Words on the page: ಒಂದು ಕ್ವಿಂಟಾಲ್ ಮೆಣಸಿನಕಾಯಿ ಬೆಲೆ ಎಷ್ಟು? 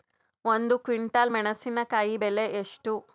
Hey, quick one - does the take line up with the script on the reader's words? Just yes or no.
yes